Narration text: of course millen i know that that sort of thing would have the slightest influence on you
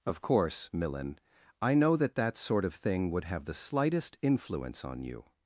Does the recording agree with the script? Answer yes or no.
yes